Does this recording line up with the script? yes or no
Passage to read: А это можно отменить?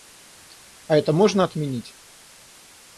yes